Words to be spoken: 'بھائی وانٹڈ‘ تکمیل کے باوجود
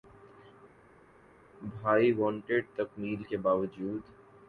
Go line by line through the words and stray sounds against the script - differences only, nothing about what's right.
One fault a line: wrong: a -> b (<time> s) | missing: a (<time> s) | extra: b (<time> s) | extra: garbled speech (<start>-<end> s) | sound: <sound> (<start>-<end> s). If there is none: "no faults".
no faults